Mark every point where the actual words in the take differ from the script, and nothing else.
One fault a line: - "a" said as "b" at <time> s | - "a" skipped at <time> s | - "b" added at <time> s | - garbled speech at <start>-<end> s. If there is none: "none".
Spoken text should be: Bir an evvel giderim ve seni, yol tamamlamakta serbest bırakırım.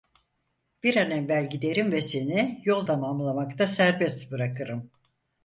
none